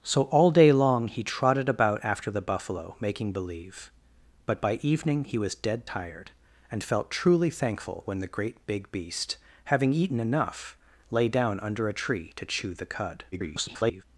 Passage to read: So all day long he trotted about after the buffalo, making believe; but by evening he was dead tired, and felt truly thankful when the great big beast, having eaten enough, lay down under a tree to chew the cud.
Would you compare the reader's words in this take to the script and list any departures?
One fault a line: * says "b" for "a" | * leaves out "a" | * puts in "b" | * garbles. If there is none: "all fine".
* garbles